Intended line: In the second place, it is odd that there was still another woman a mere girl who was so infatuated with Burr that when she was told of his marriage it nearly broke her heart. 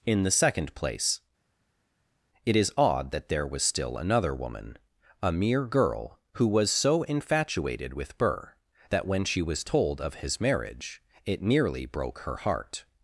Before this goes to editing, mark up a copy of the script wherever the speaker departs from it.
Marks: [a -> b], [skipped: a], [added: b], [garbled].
In the second place, it is odd that there was still another woman a mere girl who was so infatuated with Burr that when she was told of his marriage it nearly broke her heart.